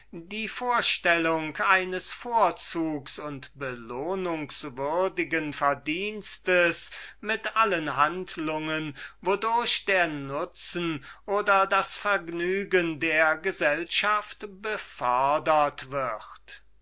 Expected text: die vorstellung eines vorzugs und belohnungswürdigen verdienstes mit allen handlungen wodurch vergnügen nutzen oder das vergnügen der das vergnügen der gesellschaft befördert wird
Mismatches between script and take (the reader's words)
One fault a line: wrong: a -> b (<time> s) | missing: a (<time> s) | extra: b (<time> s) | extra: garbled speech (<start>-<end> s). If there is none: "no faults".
wrong: vergnügen -> der (9.9 s)
missing: das vergnügen der (13.4 s)